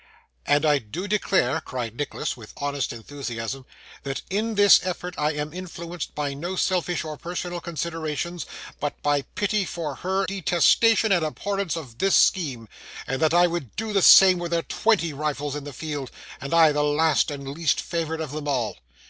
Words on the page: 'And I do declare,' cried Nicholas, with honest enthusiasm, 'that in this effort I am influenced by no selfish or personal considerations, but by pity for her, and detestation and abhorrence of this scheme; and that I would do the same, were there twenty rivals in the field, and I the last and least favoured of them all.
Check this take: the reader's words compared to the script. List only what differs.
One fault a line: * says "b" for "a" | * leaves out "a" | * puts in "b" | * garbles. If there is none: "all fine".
* leaves out "and"